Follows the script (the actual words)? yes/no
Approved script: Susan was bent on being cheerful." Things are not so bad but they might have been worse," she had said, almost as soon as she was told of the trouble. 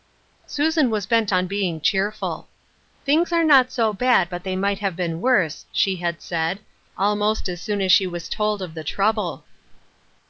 yes